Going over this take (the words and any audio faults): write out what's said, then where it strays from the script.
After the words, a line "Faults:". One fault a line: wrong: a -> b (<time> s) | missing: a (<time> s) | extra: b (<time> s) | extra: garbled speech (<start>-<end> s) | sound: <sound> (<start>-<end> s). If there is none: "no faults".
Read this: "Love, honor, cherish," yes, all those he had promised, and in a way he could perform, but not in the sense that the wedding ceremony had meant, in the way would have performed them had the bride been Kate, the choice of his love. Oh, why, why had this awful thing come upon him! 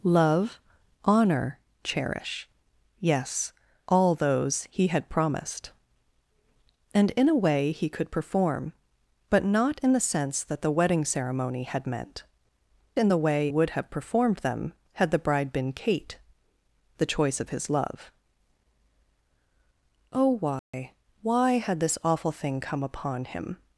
"Love, honor, cherish," yes, all those he had promised, and in a way he could perform, but not in the sense that the wedding ceremony had meant, in the way would have performed them had the bride been Kate, the choice of his love. Oh, why, why had this awful thing come upon him!
Faults:
sound: dropout (20.6-20.7 s)